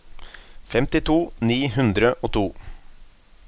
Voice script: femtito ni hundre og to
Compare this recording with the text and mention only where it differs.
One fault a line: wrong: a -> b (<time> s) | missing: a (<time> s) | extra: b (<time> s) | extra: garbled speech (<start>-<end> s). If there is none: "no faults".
no faults